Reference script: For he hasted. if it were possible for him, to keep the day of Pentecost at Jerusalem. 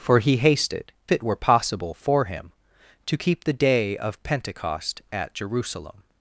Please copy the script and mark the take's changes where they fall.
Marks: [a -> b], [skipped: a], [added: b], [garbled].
For he hasted. [skipped: if] it were possible for him, to keep the day of Pentecost at Jerusalem.